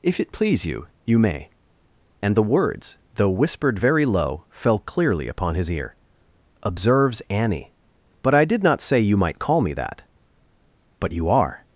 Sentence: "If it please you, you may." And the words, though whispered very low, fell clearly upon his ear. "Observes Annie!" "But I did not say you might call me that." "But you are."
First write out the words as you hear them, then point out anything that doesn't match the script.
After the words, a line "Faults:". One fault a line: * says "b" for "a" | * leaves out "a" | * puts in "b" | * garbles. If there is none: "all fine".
"If it please you, you may." And the words, though whispered very low, fell clearly upon his ear. "Observes Annie!" "But I did not say you might call me that." "But you are."
Faults:
all fine